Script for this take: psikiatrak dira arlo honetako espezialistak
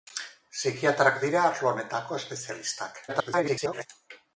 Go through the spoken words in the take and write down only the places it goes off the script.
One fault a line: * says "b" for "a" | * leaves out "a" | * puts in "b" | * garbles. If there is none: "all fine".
* garbles